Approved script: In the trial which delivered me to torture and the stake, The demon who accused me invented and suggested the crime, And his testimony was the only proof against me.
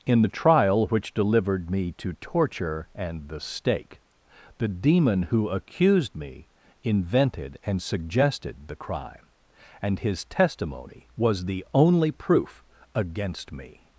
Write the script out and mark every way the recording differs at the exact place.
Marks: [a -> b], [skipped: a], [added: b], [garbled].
In the trial which delivered me to torture and the stake, The demon who accused me invented and suggested the crime, And his testimony was the only proof against me.